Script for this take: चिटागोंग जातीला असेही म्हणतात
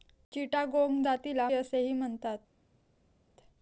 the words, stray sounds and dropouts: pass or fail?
pass